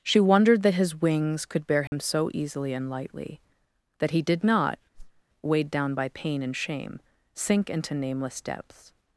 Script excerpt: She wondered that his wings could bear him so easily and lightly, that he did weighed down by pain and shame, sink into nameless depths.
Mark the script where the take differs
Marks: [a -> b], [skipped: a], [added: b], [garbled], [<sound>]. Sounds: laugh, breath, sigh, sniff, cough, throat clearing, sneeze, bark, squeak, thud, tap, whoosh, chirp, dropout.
She wondered that his wings could bear him [dropout] so easily and lightly, that he did [added: not] [whoosh] weighed down by pain and shame, sink into nameless depths.